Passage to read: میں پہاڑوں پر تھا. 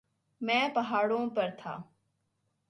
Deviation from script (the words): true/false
false